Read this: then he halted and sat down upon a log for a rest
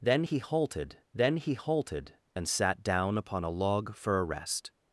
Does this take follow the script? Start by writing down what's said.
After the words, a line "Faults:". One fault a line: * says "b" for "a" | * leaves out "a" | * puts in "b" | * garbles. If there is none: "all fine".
then he halted then he halted and sat down upon a log for a rest
Faults:
* puts in "then he halted"